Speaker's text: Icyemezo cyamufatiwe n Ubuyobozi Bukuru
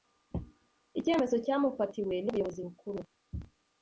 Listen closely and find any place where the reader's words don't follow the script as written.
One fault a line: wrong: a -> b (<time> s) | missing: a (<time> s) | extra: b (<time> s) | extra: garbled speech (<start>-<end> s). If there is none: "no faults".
no faults